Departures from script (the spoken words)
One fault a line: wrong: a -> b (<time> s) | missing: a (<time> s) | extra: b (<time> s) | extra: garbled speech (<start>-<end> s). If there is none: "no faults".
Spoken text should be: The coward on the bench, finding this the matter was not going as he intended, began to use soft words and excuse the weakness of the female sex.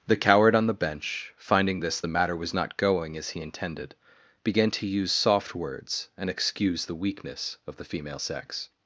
no faults